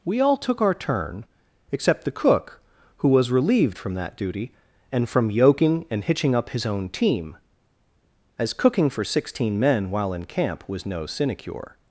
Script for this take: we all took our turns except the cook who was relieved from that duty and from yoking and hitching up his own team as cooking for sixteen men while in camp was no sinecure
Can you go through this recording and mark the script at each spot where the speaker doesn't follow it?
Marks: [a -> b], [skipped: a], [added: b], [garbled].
we all took our [turns -> turn] except the cook who was relieved from that duty and from yoking and hitching up his own team as cooking for sixteen men while in camp was no sinecure